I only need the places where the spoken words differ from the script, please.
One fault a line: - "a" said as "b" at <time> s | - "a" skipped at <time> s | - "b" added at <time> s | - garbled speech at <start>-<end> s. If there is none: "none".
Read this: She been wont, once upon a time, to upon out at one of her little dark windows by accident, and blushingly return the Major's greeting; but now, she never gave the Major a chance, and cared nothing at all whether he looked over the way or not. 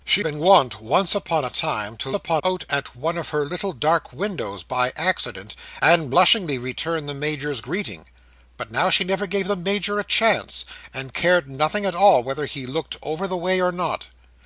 none